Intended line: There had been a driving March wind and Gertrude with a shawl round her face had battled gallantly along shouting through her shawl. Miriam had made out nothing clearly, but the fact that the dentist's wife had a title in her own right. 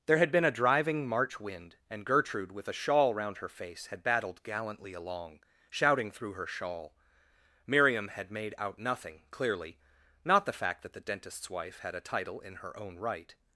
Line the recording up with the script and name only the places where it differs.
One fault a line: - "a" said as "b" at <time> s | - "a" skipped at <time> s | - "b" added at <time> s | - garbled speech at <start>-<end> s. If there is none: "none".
- "but" said as "not" at 10.2 s